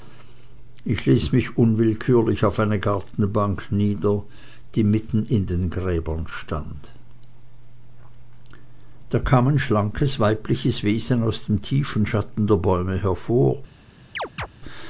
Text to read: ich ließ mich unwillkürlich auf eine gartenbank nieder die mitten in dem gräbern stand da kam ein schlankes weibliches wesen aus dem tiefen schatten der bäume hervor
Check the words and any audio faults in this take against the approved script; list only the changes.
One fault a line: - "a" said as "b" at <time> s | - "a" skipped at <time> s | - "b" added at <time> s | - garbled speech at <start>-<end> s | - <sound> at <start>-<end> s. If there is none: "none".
- "dem" said as "den" at 5.5 s
- chirp at 14.2-14.5 s